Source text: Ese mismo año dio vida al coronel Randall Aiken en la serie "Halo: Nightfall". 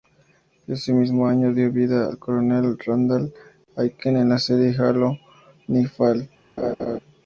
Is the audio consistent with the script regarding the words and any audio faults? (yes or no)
no